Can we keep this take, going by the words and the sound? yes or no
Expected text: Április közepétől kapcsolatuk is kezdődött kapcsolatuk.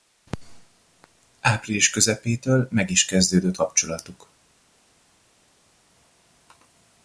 no